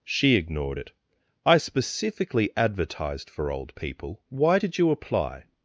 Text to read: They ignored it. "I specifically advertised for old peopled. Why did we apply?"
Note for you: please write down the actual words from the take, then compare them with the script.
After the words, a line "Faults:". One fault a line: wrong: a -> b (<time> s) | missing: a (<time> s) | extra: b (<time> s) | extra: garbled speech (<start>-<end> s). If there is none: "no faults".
She ignored it. "I specifically advertised for old people. Why did you apply?"
Faults:
wrong: They -> She (0.0 s)
wrong: peopled -> people (3.8 s)
wrong: we -> you (4.8 s)